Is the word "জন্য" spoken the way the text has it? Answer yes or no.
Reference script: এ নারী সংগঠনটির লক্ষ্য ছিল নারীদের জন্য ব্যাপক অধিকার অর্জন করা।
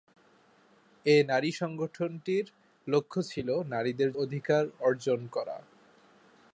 no